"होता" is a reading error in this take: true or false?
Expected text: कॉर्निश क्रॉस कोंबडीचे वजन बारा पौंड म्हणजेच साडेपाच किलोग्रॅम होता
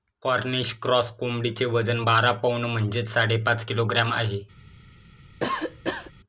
true